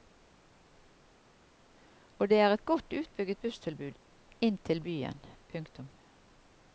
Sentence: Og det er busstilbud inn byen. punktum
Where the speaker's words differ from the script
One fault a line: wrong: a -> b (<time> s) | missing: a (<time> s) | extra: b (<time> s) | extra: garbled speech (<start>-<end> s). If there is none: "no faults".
extra: et godt utbygget (2.5 s)
extra: til (4.6 s)